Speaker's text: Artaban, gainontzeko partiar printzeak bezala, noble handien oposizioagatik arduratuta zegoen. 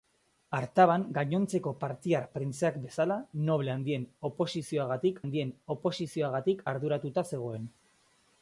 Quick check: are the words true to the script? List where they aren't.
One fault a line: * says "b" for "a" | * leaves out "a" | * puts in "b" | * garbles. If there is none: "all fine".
* puts in "handien oposizioagatik"